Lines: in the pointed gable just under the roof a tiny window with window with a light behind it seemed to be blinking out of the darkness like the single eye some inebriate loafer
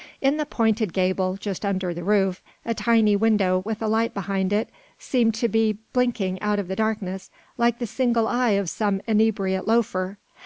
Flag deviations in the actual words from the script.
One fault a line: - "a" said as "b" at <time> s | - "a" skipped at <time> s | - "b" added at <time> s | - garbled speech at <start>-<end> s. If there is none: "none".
- "window with" skipped at 3.8 s
- "of" added at 8.5 s